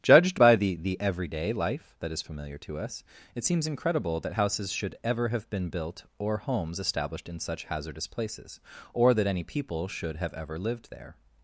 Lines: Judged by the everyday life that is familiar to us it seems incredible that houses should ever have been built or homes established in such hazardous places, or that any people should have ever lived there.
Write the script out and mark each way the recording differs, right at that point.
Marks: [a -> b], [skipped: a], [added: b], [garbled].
Judged by the [added: the] everyday life that is familiar to us it seems incredible that houses should ever have been built or homes established in such hazardous places, or that any people should have ever lived there.